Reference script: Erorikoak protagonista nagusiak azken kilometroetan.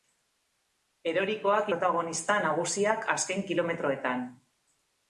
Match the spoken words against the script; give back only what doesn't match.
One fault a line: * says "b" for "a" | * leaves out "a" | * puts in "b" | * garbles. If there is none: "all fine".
all fine